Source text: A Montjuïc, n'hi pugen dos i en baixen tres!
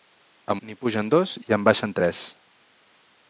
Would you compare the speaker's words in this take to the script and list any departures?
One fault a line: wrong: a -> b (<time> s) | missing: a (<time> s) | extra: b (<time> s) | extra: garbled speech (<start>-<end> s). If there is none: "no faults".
missing: Montjuïc (0.5 s)